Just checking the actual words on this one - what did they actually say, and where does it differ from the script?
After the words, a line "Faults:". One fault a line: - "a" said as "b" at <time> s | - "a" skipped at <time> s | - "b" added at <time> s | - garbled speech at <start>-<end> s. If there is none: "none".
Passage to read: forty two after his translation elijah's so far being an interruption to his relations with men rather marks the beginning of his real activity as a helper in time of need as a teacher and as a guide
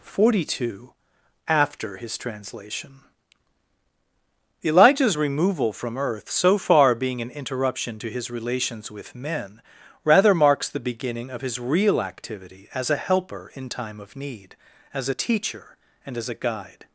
forty two after his translation elijah's removal from earth so far being an interruption to his relations with men rather marks the beginning of his real activity as a helper in time of need as a teacher and as a guide
Faults:
- "removal from earth" added at 5.2 s